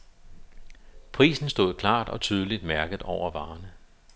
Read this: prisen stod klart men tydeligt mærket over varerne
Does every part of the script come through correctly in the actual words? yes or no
no